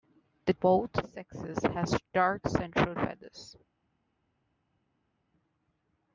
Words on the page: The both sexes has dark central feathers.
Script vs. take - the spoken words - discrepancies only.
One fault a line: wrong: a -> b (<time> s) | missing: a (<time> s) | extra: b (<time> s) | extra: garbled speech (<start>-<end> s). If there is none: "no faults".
no faults